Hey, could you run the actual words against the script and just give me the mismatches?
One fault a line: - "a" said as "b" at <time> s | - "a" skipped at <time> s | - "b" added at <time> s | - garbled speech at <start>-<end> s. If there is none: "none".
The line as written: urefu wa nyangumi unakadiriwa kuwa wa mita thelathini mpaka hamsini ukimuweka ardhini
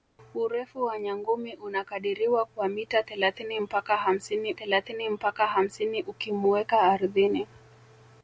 - "kuwa" skipped at 2.5 s
- "thelathini mpaka hamsini" added at 4.5 s